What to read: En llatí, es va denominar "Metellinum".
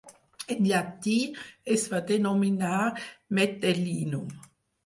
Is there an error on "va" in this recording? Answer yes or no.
no